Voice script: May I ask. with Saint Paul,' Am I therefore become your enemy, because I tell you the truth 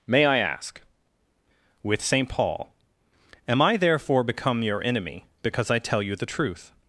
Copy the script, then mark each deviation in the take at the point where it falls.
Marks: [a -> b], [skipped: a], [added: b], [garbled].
May I ask. with Saint Paul,' Am I therefore become your enemy, because I tell you the truth